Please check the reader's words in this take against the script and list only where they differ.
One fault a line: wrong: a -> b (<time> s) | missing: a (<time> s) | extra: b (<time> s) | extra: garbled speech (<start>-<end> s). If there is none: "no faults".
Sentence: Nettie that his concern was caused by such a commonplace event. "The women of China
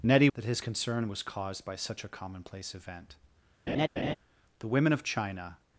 no faults